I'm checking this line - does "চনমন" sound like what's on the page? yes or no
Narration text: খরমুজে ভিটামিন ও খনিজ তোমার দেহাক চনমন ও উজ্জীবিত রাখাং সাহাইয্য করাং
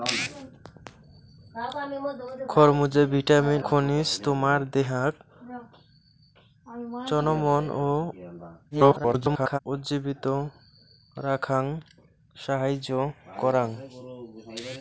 yes